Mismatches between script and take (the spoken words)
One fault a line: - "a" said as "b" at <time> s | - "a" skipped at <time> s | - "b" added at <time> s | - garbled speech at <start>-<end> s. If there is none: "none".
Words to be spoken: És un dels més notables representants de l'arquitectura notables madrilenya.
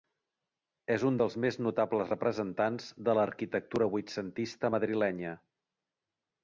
- "notables" said as "vuitcentista" at 4.0 s